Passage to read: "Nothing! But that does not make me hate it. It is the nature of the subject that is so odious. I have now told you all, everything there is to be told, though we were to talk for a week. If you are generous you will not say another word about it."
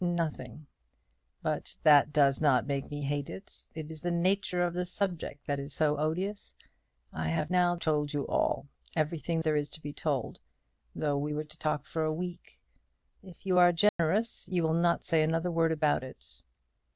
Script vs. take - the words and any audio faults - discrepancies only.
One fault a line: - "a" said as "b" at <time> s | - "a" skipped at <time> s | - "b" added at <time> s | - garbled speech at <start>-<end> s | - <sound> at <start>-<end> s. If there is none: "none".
- dropout at 13.9-14.0 s